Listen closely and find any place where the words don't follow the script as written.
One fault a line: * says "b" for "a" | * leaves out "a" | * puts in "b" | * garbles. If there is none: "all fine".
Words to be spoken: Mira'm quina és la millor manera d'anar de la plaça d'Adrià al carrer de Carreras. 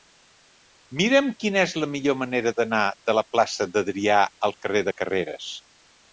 all fine